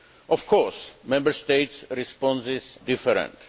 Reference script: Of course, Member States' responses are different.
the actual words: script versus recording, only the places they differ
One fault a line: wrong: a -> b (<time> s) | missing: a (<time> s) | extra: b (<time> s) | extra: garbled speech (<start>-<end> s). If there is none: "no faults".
missing: are (2.8 s)